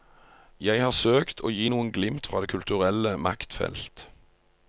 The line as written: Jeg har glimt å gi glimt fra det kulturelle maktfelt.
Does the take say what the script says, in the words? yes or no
no